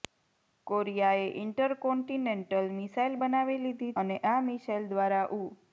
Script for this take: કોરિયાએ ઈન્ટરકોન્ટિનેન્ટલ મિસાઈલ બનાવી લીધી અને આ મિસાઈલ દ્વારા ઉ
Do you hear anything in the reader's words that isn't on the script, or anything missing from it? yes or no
no